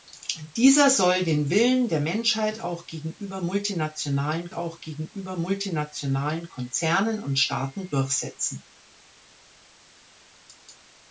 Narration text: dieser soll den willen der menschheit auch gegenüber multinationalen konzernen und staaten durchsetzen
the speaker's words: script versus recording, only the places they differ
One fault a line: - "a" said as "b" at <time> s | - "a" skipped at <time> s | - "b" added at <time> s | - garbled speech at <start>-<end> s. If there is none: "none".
- "auch gegenüber multinationalen" added at 4.5 s